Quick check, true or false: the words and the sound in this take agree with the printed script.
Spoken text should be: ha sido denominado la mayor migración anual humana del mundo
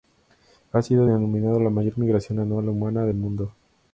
true